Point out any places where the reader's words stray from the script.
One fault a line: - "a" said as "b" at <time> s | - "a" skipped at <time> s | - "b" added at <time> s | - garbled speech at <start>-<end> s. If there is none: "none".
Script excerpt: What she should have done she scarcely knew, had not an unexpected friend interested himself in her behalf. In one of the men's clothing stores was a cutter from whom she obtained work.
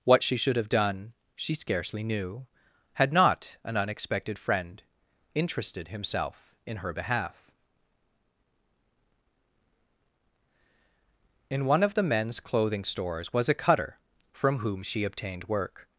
none